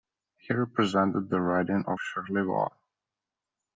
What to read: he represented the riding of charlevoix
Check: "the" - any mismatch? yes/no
no